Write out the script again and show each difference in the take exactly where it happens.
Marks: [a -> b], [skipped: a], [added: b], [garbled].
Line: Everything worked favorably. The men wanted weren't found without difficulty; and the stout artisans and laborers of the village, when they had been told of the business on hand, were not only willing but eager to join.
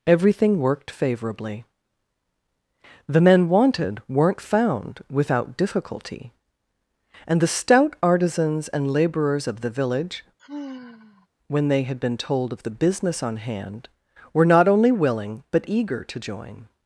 Everything worked favorably. The men wanted weren't found without difficulty; and the stout artisans and laborers of the village, when they had been told of the business on hand, were not only willing but eager to join.